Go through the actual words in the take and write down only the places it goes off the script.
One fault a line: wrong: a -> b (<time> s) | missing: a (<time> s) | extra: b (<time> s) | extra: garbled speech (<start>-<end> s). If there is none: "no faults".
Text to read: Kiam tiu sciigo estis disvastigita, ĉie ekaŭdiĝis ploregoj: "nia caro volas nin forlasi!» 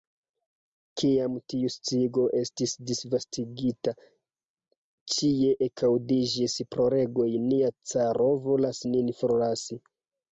no faults